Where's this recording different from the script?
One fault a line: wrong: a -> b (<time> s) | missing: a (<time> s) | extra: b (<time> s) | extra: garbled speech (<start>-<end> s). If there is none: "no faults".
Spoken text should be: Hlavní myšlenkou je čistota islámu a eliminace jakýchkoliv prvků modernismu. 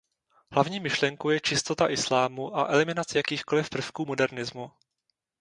no faults